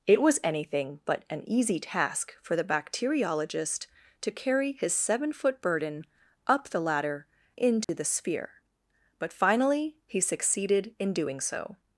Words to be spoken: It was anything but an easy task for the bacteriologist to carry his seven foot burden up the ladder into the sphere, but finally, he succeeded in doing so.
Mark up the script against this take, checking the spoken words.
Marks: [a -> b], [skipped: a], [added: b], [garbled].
It was anything but an easy task for the bacteriologist to carry his seven foot burden up the ladder into the sphere, but finally, he succeeded in doing so.